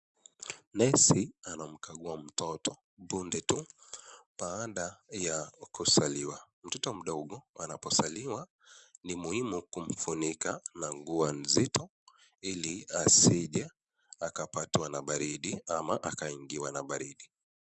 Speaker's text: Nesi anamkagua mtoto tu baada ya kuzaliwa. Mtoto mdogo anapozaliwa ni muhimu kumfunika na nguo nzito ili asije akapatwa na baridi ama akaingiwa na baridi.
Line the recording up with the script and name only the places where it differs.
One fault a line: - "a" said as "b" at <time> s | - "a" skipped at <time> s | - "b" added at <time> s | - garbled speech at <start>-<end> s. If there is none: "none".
- "punde" added at 3.1 s